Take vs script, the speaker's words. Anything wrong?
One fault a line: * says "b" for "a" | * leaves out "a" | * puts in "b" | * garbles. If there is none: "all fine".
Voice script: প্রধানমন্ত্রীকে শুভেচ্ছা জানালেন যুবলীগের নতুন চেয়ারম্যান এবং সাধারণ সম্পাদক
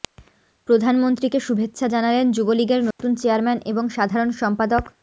all fine